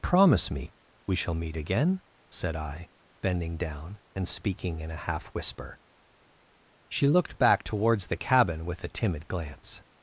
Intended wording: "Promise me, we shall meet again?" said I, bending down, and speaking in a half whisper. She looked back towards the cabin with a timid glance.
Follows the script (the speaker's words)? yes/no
yes